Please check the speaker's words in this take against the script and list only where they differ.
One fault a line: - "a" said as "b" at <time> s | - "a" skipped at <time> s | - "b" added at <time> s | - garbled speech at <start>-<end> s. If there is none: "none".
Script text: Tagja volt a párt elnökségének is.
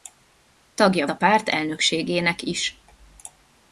- "volt" skipped at 1.1 s